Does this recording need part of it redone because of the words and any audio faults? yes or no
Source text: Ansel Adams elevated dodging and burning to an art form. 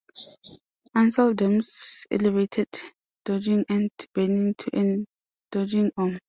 yes